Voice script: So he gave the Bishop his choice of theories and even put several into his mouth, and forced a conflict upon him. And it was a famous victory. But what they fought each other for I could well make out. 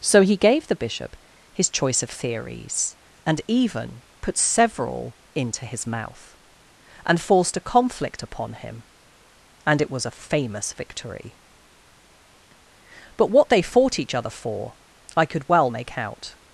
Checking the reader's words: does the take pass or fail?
pass